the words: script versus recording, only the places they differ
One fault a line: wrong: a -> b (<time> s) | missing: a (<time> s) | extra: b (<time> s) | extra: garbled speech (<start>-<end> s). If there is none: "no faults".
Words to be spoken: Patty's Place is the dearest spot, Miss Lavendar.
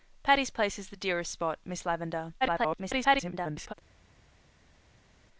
extra: garbled speech (2.4-3.7 s)